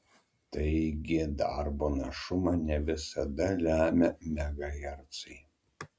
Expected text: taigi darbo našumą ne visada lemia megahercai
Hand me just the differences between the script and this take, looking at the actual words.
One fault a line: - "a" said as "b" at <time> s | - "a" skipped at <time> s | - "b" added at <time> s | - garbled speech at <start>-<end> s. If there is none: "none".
none